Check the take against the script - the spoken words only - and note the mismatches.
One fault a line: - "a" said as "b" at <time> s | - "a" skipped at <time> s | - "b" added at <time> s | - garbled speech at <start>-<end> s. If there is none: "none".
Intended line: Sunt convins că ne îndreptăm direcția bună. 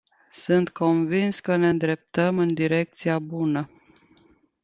- "în" added at 2.4 s